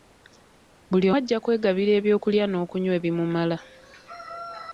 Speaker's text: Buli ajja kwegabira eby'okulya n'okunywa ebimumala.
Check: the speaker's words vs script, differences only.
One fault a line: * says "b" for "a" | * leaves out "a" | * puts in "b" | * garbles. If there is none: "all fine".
all fine